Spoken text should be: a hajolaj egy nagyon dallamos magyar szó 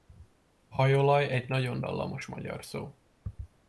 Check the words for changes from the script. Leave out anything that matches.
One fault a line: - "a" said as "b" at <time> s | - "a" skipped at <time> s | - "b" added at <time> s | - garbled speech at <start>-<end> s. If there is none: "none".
none